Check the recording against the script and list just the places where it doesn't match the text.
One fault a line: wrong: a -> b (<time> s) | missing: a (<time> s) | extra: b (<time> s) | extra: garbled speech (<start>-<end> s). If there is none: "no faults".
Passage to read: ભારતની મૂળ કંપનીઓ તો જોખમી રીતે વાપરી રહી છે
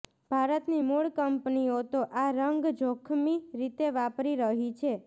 extra: આ રંગ (2.2 s)